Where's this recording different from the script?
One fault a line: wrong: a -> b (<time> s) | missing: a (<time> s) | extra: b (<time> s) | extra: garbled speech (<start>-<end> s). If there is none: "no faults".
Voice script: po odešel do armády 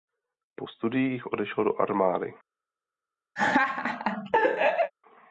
extra: studiích (0.6 s)